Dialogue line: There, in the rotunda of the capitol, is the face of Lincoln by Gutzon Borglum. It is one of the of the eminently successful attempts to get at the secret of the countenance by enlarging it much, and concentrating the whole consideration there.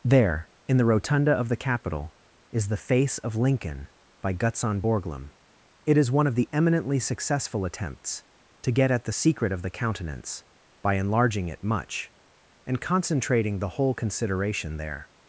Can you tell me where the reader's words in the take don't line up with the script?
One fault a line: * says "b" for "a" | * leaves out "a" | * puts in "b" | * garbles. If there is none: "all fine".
* leaves out "of the"